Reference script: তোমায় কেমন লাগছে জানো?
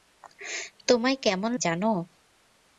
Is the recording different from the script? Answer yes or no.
yes